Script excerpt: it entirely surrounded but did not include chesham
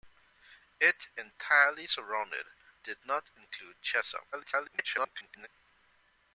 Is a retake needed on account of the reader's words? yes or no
yes